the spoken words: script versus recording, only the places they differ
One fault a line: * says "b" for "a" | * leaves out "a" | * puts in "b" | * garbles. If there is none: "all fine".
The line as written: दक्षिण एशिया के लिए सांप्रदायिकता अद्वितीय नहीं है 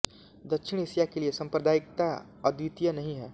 all fine